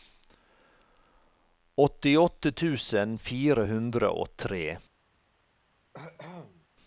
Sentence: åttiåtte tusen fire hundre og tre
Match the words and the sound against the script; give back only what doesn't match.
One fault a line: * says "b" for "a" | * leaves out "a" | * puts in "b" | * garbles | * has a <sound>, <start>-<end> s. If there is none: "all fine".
* has a cough, 5.9-6.7 s